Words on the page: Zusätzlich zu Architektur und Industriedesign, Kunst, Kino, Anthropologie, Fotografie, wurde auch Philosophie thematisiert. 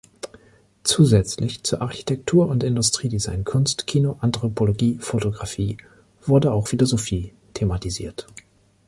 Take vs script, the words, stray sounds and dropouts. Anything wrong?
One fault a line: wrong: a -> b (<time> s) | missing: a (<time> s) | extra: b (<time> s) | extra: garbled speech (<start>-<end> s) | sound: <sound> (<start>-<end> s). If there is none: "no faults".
no faults